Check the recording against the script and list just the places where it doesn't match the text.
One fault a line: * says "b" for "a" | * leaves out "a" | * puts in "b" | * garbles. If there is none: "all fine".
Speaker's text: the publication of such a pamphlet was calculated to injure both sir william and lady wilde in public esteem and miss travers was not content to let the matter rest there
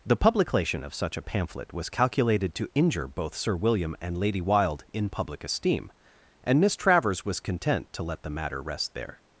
* leaves out "not"